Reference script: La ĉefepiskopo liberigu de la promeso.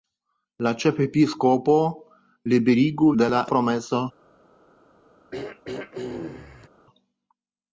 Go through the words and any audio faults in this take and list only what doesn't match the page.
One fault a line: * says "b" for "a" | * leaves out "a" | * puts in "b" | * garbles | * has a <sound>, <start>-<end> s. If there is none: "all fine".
* has a throat clearing, 5.3-6.7 s